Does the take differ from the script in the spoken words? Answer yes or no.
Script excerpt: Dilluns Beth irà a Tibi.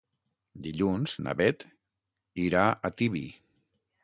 yes